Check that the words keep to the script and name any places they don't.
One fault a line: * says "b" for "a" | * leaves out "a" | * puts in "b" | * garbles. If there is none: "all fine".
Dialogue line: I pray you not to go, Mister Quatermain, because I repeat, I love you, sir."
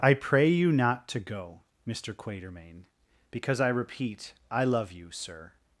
all fine